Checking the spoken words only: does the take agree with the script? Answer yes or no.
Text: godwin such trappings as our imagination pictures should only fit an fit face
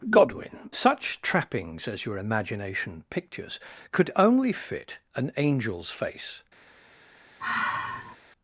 no